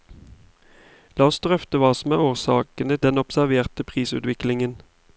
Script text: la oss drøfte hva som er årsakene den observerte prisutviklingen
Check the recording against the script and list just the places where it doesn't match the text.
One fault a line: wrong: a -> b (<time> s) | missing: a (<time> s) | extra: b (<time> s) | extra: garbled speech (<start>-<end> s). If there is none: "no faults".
no faults